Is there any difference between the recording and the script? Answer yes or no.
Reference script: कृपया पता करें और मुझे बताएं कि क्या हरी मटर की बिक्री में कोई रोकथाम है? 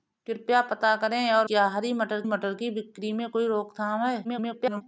yes